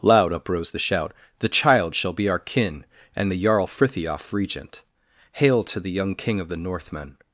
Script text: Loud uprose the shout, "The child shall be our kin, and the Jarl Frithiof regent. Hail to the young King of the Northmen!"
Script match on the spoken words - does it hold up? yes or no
yes